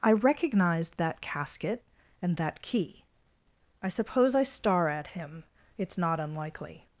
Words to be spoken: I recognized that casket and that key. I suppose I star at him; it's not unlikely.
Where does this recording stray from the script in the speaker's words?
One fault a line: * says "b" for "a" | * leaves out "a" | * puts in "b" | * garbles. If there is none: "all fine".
all fine